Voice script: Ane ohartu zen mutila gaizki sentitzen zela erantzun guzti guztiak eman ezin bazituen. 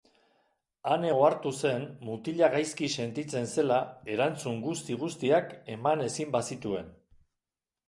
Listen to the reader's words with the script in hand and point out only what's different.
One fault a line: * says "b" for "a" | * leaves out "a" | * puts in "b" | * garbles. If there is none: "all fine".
all fine